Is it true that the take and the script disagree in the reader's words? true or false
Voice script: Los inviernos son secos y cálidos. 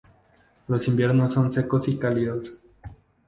false